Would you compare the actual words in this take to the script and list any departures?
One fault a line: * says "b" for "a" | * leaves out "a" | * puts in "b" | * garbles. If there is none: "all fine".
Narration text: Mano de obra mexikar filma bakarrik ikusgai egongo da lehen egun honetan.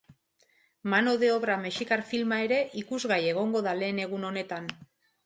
* says "ere" for "bakarrik"